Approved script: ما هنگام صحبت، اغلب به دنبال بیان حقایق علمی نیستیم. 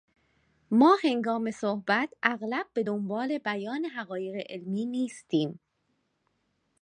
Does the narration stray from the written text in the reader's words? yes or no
no